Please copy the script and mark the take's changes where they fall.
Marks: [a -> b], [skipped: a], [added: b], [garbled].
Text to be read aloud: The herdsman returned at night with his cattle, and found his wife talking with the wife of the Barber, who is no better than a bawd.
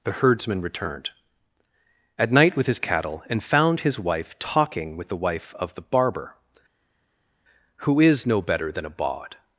The herdsman returned at night with his cattle, and found his wife talking with the wife of the Barber, who is no better than a bawd.